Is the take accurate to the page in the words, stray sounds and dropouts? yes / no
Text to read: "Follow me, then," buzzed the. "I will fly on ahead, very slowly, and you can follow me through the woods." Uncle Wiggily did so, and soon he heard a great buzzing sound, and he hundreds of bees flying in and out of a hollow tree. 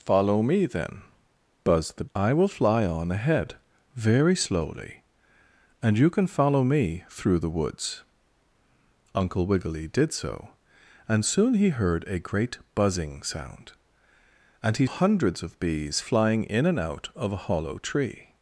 yes